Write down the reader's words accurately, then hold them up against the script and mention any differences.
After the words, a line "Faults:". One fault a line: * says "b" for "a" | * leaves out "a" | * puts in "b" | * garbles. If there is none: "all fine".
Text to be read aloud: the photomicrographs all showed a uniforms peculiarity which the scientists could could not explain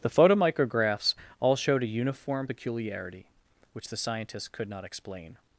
the photomicrographs all showed a uniform peculiarity which the scientists could not explain
Faults:
* says "uniform" for "uniforms"
* leaves out "could"